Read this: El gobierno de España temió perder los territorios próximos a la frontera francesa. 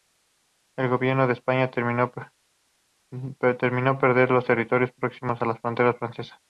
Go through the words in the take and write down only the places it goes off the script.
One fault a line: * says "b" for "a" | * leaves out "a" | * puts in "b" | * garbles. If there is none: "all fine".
all fine